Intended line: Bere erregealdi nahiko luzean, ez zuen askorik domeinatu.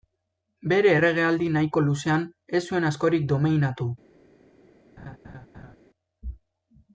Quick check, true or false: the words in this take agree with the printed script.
true